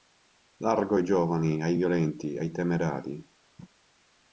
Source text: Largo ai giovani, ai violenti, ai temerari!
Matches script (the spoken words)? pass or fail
pass